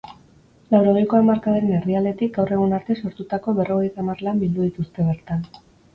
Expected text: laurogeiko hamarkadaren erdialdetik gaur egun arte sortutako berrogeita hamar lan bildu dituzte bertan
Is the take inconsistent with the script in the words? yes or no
no